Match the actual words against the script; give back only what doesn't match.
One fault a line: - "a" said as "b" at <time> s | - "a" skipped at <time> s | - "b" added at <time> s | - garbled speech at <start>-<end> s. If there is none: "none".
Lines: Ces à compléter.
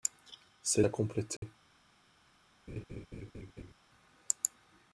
none